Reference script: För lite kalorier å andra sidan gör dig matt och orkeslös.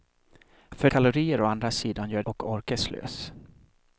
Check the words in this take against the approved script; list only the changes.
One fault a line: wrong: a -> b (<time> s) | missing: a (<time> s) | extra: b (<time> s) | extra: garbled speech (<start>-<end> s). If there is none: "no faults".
missing: lite (0.9 s)
missing: dig matt (2.2 s)